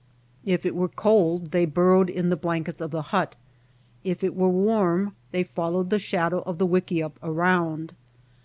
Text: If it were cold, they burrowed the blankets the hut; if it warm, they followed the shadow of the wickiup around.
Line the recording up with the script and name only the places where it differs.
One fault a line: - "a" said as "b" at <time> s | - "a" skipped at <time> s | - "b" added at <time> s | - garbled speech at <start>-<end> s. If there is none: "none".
- "in" added at 2.1 s
- "of" added at 2.8 s
- "were" added at 4.3 s